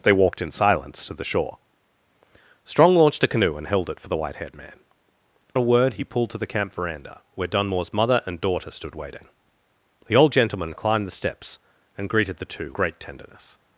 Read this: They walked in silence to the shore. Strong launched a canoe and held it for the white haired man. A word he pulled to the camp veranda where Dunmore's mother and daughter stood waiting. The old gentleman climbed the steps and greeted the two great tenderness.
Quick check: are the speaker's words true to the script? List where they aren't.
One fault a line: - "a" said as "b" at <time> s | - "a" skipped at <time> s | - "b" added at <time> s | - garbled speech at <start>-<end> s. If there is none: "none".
none